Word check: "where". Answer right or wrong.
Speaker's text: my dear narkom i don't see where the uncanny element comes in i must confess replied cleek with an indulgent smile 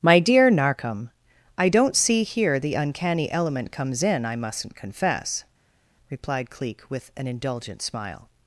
wrong